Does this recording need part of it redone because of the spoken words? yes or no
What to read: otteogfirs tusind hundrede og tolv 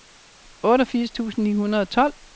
yes